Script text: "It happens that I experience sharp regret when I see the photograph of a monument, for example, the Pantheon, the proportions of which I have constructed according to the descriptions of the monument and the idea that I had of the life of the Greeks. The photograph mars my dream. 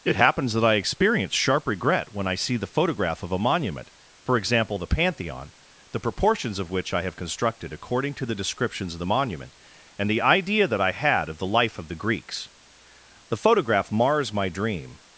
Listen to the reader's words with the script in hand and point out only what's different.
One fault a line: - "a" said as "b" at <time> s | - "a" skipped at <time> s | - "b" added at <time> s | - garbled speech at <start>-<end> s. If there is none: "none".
none